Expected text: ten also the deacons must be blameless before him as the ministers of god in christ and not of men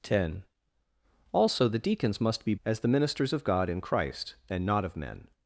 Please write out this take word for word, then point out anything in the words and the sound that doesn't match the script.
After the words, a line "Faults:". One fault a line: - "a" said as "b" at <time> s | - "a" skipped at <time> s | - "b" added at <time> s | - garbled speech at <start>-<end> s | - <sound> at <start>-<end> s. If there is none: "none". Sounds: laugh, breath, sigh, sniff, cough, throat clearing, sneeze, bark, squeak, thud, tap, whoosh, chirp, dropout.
ten also the deacons must be as the ministers of god in christ and not of men
Faults:
- "blameless before him" skipped at 2.5 s